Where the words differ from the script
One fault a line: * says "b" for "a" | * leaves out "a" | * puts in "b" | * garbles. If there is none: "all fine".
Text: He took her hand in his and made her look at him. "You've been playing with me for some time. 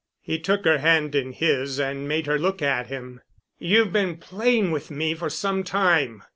all fine